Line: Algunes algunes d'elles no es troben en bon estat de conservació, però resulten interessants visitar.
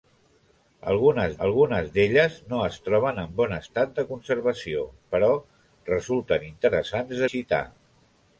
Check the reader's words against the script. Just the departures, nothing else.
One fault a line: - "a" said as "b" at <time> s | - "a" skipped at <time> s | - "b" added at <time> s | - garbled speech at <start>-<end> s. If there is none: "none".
none